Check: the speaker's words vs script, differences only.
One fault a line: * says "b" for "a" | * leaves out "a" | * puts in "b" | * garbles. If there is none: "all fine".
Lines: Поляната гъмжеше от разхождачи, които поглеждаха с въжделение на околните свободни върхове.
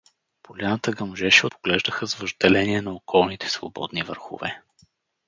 * leaves out "от разхождачи които"